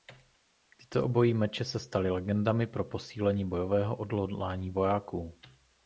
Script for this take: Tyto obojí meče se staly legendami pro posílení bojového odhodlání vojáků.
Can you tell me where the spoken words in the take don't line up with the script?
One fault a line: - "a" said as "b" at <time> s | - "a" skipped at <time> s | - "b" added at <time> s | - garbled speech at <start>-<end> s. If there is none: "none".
none